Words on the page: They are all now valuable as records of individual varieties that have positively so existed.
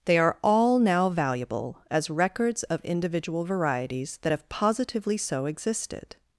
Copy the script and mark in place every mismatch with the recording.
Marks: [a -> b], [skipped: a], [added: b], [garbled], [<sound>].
They are all now valuable as records of individual varieties that have positively so existed.